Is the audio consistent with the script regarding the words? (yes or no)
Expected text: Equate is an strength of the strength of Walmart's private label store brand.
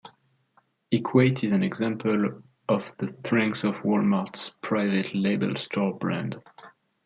no